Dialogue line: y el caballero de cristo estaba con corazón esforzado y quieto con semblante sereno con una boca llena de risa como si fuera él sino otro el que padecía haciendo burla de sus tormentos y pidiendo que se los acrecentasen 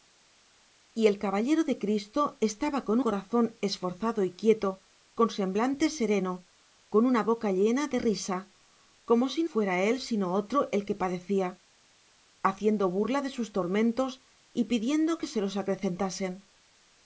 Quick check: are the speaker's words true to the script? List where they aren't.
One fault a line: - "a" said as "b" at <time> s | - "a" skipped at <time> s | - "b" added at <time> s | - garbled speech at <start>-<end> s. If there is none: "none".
none